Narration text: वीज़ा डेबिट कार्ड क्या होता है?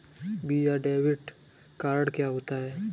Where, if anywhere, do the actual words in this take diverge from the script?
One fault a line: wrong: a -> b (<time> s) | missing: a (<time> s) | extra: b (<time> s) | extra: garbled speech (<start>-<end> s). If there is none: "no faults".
no faults